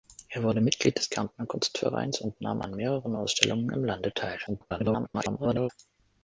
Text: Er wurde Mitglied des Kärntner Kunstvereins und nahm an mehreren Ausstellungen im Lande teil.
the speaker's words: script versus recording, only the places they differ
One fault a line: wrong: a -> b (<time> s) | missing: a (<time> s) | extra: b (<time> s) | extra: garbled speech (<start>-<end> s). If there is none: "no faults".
extra: garbled speech (4.5-5.7 s)